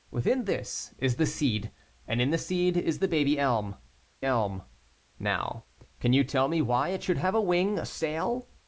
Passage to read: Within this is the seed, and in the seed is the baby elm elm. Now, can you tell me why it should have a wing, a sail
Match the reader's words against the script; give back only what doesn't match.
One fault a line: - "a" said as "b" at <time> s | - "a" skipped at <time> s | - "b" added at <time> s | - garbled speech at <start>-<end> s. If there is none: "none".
none